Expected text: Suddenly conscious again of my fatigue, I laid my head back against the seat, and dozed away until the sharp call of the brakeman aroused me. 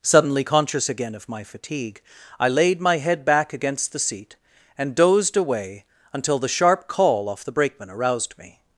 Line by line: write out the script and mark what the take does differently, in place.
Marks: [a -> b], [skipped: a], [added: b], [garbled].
Suddenly conscious again of my fatigue, I laid my head back against the seat, and dozed away until the sharp call [of -> off] the brakeman aroused me.